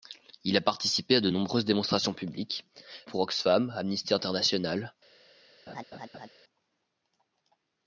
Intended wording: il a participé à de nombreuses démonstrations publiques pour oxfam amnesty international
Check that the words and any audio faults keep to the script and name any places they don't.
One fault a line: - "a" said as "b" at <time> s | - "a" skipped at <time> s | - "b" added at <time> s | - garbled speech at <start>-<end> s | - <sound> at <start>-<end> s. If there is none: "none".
- laugh at 5.7-6.3 s